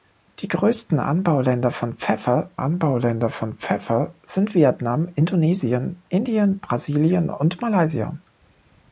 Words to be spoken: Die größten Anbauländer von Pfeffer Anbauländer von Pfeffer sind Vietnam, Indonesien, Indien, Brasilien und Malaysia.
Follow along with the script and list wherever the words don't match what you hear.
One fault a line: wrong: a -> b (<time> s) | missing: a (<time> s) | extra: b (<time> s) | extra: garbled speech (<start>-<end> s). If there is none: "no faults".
no faults